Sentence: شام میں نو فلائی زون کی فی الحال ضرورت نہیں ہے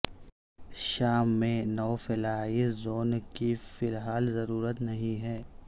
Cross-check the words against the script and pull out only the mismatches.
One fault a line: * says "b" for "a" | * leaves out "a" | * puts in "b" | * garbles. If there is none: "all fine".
all fine